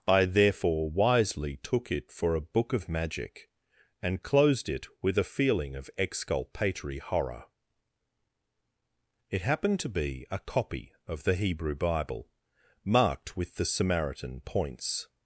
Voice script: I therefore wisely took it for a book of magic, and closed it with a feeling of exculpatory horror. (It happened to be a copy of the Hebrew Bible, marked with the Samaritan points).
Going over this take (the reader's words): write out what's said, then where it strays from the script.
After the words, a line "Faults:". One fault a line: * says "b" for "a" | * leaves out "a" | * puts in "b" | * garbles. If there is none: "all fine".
I therefore wisely took it for a book of magic, and closed it with a feeling of exculpatory horror. (It happened to be a copy of the Hebrew Bible, marked with the Samaritan points).
Faults:
all fine